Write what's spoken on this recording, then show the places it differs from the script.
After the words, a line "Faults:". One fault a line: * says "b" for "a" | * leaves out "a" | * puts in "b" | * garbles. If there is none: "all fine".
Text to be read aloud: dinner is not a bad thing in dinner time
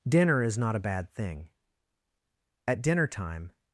dinner is not a bad thing at dinner time
Faults:
* says "at" for "in"